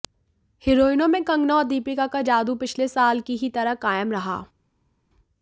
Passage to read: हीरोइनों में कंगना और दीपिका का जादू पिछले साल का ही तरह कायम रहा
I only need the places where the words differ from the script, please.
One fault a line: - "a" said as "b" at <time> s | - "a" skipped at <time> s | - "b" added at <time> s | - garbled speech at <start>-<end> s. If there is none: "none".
- "का" said as "की" at 3.2 s